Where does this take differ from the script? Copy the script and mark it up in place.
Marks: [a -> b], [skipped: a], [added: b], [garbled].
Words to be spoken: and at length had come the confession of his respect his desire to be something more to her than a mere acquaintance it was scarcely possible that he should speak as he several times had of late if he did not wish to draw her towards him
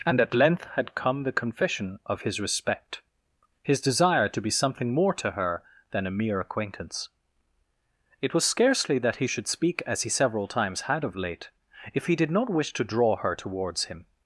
and at length had come the confession of his respect his desire to be something more to her than a mere acquaintance it was scarcely [skipped: possible] that he should speak as he several times had of late if he did not wish to draw her towards him